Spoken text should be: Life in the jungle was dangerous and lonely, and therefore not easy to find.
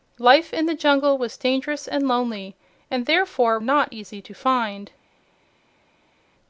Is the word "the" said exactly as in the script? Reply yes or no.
yes